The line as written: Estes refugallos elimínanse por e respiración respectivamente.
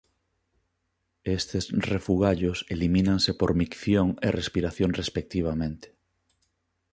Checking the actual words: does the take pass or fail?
fail